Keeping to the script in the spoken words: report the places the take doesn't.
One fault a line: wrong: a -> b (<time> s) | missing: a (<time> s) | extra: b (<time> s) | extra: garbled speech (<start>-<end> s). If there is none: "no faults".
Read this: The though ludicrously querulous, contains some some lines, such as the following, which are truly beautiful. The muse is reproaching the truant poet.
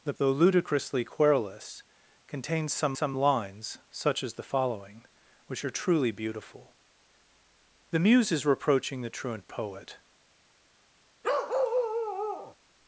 no faults